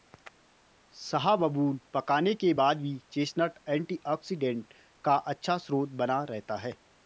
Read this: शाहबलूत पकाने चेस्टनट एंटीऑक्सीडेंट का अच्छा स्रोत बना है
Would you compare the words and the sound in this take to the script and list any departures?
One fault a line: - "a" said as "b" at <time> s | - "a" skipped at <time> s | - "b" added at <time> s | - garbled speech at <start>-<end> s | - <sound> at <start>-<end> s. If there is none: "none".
- "के बाद भी" added at 2.3 s
- "रहता" added at 6.3 s